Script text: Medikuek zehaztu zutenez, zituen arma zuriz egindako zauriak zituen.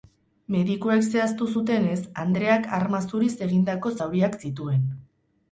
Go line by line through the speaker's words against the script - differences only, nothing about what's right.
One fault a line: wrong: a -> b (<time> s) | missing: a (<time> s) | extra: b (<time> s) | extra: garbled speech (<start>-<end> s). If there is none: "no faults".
wrong: zituen -> andreak (2.3 s)